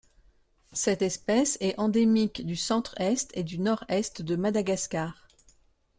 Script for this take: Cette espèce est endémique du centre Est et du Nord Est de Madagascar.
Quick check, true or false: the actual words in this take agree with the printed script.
true